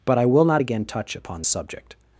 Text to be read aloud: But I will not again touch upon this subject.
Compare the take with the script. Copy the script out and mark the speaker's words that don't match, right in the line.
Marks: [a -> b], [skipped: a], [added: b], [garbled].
But I will not again touch upon [skipped: this] subject.